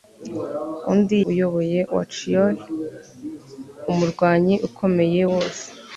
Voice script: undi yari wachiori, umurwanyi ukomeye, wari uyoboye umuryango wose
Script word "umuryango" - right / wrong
wrong